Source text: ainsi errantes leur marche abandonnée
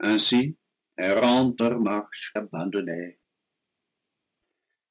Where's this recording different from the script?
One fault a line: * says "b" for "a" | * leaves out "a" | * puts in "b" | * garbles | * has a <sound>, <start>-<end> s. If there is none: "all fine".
all fine